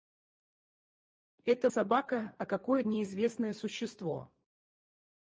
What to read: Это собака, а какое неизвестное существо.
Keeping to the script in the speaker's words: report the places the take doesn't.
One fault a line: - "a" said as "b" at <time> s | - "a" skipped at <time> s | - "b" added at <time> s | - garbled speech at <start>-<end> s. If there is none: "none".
none